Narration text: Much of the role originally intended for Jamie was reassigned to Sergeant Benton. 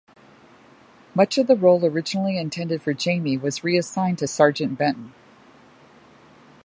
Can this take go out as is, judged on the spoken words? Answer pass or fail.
pass